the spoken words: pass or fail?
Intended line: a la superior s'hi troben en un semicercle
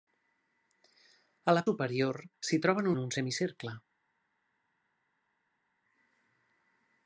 pass